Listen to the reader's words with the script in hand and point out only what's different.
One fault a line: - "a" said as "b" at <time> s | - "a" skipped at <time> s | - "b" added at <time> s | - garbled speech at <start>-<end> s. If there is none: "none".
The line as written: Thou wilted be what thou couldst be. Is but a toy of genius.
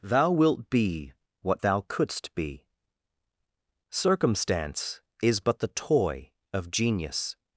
- "wilted" said as "wilt" at 0.3 s
- "Circumstance" added at 3.9 s
- "a" said as "the" at 5.6 s